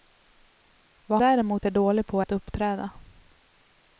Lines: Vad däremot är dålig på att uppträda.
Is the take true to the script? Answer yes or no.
yes